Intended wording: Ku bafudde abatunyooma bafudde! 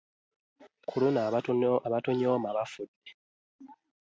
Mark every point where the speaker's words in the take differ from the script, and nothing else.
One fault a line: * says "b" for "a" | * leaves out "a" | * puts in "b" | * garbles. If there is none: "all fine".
* says "luno" for "bafudde"